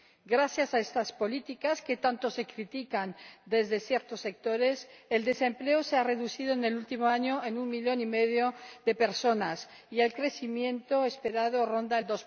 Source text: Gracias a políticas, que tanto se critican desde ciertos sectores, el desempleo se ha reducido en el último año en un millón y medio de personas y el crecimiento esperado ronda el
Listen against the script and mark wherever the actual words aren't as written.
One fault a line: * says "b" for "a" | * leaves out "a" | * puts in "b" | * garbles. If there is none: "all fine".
* puts in "estas"